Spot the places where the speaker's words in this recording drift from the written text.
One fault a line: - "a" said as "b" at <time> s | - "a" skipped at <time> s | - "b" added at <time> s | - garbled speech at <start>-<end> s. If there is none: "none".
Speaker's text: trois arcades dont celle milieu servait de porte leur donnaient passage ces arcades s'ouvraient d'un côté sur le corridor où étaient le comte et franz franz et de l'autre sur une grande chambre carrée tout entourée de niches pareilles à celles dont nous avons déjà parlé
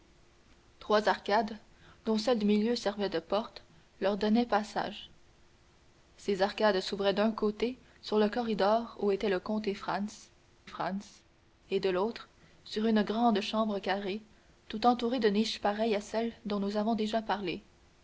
none